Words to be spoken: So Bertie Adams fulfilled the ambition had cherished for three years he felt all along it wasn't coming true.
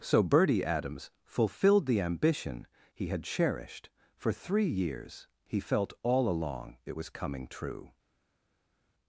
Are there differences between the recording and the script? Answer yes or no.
yes